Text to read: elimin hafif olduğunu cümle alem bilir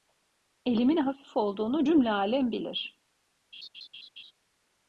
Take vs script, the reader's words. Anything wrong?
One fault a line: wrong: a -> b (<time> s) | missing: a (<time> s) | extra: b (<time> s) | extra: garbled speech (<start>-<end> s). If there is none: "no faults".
no faults